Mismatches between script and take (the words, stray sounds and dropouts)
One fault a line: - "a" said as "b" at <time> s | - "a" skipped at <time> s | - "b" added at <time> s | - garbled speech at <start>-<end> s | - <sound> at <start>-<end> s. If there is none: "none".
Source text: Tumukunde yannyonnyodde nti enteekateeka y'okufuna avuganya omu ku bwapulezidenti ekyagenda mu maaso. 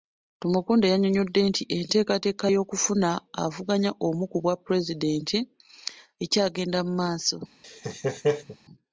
- laugh at 7.6-8.6 s